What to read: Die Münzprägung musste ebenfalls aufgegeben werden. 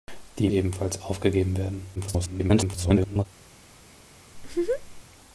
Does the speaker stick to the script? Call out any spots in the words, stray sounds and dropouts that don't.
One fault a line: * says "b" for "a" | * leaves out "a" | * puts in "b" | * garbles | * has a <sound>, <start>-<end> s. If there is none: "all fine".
* leaves out "Münzprägung musste"
* garbles
* has a laugh, 4.3-5.0 s